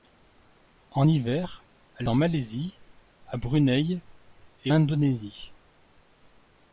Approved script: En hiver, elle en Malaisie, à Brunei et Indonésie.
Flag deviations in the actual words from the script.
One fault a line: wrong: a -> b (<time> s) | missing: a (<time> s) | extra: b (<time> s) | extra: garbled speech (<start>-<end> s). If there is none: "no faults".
no faults